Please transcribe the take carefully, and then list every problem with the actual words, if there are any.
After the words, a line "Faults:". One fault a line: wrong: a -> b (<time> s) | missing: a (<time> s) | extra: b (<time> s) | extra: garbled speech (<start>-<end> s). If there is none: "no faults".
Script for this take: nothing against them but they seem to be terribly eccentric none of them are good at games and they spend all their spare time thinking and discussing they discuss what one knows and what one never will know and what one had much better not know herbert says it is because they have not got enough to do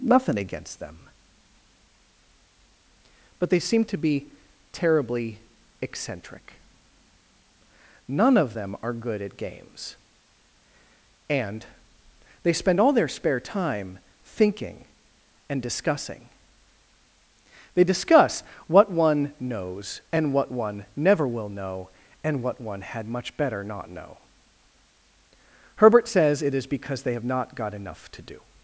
nothing against them but they seem to be terribly eccentric none of them are good at games and they spend all their spare time thinking and discussing they discuss what one knows and what one never will know and what one had much better not know herbert says it is because they have not got enough to do
Faults:
no faults